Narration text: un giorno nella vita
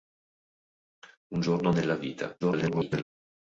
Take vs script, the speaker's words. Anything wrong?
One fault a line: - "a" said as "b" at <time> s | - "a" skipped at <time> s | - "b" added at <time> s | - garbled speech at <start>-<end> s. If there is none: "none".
- garbled speech at 2.4-3.0 s